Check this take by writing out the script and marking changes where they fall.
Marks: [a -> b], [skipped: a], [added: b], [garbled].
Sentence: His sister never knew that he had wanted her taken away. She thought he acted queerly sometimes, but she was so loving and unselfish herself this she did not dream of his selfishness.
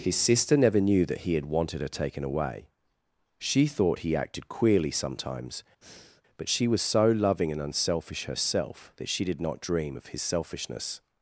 His sister never knew that he had wanted her taken away. She thought he acted queerly sometimes, but she was so loving and unselfish herself [this -> that] she did not dream of his selfishness.